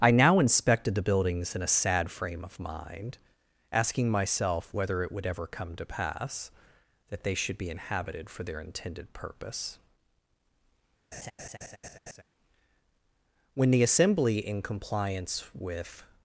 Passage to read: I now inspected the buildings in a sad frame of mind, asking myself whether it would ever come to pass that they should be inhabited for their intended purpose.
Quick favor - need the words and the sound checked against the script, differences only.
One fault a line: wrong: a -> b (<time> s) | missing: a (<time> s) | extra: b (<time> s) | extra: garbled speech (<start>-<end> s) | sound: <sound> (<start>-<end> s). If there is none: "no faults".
sound: laugh (11.1-12.2 s)
extra: When the Assembly in compliance with (13.5 s)